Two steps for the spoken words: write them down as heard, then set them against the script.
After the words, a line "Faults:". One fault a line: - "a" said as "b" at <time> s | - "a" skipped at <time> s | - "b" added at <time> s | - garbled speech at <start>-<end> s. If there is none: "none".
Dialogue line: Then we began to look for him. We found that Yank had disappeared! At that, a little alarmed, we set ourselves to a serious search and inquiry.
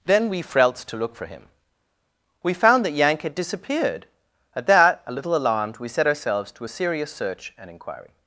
Then we frelts to look for him. We found that Yank had disappeared! At that, a little alarmed, we set ourselves to a serious search and inquiry.
Faults:
- "began" said as "frelts" at 0.4 s